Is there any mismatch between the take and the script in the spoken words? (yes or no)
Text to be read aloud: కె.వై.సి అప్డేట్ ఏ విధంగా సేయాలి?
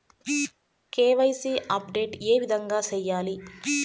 no